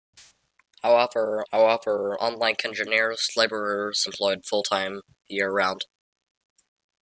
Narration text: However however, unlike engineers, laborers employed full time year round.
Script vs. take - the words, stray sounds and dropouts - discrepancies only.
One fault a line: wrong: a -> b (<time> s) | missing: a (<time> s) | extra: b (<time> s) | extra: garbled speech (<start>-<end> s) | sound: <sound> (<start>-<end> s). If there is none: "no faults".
no faults